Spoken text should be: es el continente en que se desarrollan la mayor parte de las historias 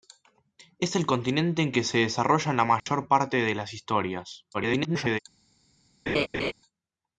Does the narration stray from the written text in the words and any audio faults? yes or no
yes